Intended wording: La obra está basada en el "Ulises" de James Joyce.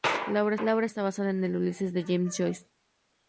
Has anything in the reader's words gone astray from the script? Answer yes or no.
yes